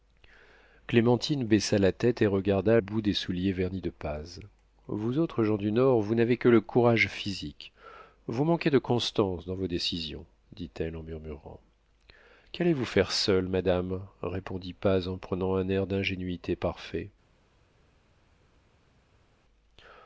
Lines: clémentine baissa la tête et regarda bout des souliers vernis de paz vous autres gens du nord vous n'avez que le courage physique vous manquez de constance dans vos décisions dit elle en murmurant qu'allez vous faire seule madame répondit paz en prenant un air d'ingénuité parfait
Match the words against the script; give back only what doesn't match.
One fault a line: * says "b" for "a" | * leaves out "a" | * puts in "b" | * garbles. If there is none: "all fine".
all fine